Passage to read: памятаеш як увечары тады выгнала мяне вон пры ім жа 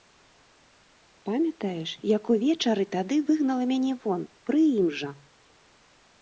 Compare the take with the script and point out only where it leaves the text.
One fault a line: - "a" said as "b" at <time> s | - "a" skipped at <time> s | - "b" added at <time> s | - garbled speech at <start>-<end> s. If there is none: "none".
none